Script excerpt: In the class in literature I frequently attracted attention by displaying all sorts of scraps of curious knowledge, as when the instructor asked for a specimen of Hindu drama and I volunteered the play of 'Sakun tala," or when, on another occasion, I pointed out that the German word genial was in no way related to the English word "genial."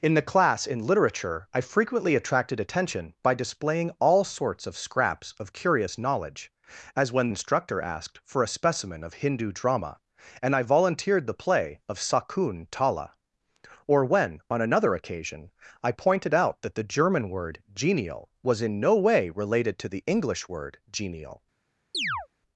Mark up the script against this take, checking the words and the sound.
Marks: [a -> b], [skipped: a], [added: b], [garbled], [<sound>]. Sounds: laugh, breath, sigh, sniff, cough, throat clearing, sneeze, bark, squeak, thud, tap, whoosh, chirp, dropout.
In the class in literature I frequently attracted attention by displaying all sorts of scraps of curious knowledge, as when [skipped: the] instructor asked for a specimen of Hindu drama and I volunteered the play of 'Sakun tala," or when, on another occasion, I pointed out that the German word genial was in no way related to the English word "genial." [chirp]